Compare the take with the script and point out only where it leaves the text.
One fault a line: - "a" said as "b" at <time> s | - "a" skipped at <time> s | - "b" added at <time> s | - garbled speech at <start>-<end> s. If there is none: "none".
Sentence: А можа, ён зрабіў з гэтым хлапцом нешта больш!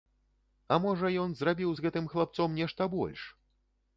none